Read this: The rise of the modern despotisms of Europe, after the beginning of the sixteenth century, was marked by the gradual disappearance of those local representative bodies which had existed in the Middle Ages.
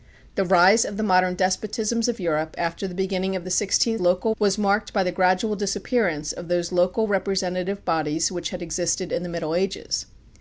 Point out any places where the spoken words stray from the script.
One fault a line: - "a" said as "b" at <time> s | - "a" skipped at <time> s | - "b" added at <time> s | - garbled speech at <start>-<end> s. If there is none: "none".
- "century" said as "local" at 4.0 s